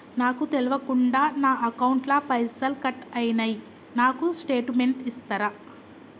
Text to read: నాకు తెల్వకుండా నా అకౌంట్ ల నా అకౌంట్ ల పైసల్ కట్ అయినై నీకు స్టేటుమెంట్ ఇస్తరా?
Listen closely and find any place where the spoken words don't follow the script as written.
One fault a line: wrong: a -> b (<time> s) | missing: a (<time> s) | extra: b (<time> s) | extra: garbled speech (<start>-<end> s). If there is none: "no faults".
missing: నా అకౌంట్ ల (2.2 s)
wrong: నీకు -> నాకు (4.0 s)